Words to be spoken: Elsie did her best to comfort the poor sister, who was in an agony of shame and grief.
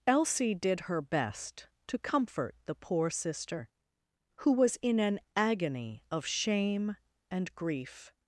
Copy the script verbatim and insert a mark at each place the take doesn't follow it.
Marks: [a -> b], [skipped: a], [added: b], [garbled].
Elsie did her best to comfort the poor sister, who was in an agony of shame and grief.